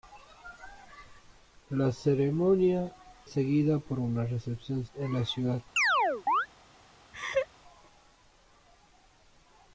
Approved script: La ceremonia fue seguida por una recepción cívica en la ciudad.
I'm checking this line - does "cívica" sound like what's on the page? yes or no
no